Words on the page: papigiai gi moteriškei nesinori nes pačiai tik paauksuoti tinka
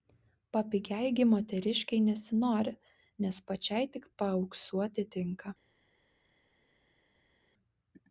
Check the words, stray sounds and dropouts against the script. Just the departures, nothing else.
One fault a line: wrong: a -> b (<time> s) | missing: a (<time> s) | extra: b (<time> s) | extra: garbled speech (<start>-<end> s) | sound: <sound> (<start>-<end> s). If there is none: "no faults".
no faults